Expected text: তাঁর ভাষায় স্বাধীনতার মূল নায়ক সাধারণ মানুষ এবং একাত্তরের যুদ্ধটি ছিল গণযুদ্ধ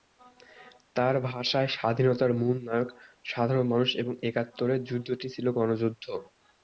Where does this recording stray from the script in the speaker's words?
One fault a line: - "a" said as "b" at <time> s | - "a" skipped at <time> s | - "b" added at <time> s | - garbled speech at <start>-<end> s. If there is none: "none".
none